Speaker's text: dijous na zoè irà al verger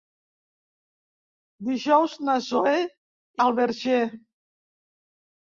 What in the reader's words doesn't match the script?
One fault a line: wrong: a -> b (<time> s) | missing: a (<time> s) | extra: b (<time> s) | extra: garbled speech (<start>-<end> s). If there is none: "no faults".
missing: irà (2.8 s)